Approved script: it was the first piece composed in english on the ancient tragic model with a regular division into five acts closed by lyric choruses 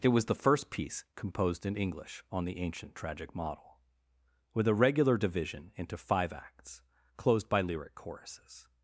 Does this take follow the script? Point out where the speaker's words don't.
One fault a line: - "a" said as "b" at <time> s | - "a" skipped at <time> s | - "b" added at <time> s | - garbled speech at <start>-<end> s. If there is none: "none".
none